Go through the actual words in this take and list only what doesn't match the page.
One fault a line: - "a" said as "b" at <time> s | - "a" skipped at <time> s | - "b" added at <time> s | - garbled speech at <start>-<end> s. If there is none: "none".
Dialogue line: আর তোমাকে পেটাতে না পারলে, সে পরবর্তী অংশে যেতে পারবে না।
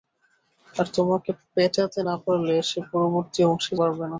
- "যেতে" skipped at 3.7 s